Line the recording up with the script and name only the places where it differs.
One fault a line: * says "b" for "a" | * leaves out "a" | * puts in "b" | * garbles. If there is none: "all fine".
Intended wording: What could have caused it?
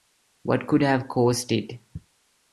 all fine